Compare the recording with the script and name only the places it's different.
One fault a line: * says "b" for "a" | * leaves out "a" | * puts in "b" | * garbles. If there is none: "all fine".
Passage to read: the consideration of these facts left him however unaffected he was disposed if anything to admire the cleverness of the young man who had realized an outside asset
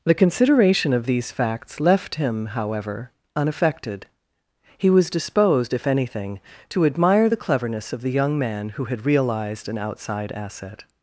all fine